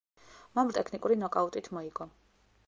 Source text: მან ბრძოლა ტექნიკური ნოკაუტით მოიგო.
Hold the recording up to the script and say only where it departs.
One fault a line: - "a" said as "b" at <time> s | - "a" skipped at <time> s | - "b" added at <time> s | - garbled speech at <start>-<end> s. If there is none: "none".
- "ბრძოლა" skipped at 0.7 s